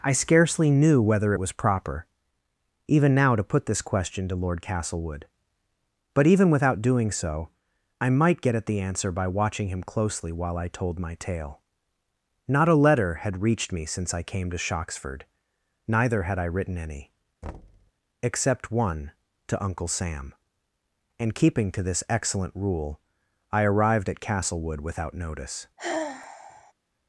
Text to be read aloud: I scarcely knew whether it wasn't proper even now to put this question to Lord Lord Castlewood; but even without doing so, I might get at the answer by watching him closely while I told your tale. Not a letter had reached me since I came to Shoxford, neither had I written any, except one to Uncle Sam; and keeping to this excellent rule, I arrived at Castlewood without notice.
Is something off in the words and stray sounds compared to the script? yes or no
yes